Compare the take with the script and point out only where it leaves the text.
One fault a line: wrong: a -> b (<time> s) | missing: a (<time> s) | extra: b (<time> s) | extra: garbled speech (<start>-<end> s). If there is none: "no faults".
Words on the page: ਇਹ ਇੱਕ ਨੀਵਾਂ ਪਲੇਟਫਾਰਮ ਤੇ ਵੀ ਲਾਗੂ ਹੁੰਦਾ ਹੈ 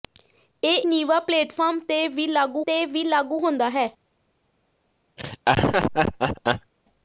missing: ਇੱਕ (0.8 s)
extra: ਤੇ ਵੀ ਲਾਗੂ (2.6 s)